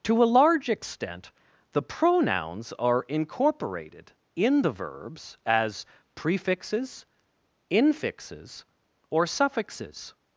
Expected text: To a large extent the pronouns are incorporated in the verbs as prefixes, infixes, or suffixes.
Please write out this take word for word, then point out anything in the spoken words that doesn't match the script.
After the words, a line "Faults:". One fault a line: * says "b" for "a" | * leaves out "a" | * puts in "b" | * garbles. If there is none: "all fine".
To a large extent the pronouns are incorporated in the verbs as prefixes, infixes, or suffixes.
Faults:
all fine